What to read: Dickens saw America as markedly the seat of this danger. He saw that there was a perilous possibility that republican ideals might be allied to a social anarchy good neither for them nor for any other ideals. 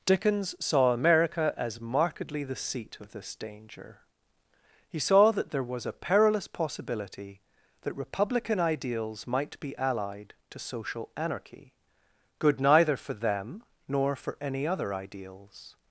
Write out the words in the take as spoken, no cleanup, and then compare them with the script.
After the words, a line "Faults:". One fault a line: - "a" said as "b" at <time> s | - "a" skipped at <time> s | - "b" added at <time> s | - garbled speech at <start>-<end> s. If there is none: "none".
Dickens saw America as markedly the seat of this danger. He saw that there was a perilous possibility that republican ideals might be allied to social anarchy good neither for them nor for any other ideals.
Faults:
- "a" skipped at 10.6 s